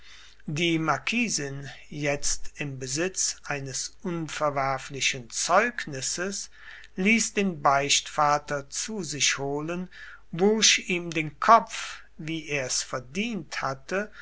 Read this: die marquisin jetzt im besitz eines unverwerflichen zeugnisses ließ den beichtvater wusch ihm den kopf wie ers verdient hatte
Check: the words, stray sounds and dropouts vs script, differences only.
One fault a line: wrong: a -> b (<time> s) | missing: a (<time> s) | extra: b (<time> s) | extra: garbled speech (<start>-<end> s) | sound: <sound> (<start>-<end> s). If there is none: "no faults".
extra: zu sich holen (8.7 s)